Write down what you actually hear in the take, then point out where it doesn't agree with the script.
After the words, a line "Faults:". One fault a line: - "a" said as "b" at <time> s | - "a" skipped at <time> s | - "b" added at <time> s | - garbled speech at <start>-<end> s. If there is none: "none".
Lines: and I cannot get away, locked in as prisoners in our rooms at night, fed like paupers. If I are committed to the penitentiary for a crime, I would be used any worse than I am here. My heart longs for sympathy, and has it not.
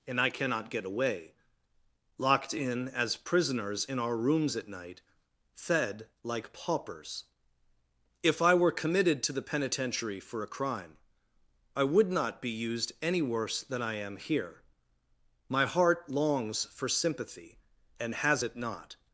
and I cannot get away, locked in as prisoners in our rooms at night, fed like paupers. If I were committed to the penitentiary for a crime, I would not be used any worse than I am here. My heart longs for sympathy, and has it not.
Faults:
- "are" said as "were" at 8.5 s
- "not" added at 12.1 s